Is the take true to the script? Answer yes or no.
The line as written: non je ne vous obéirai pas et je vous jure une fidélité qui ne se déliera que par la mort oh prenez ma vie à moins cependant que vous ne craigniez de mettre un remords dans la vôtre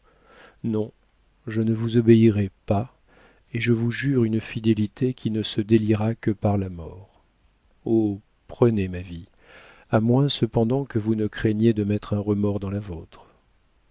yes